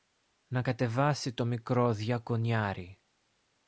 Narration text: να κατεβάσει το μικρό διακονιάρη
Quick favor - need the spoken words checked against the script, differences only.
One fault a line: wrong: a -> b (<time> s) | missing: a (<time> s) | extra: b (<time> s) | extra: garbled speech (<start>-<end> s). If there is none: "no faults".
no faults